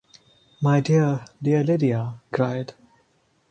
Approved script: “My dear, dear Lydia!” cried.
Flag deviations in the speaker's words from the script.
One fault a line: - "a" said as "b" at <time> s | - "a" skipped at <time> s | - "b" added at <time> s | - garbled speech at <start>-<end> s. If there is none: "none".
none